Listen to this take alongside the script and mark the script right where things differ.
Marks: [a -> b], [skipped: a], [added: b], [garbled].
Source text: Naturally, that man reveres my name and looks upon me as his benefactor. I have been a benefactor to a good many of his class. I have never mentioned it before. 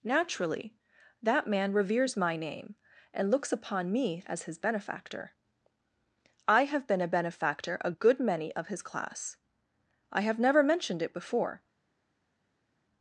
Naturally, that man reveres my name and looks upon me as his benefactor. I have been a benefactor [skipped: to] a good many of his class. I have never mentioned it before.